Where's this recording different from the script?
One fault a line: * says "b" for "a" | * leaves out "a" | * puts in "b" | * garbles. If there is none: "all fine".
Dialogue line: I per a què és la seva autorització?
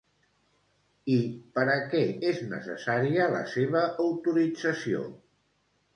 * puts in "necessària"